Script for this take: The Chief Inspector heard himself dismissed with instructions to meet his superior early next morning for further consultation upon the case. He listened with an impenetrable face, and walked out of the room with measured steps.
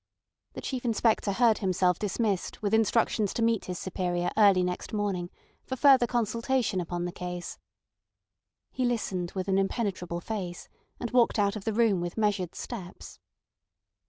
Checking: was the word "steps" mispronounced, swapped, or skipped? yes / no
no